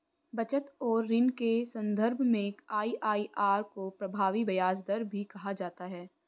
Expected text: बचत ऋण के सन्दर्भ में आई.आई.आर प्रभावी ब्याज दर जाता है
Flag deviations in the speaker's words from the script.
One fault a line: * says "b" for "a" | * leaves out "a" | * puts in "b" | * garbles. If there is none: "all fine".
* puts in "और"
* puts in "को"
* puts in "भी कहा"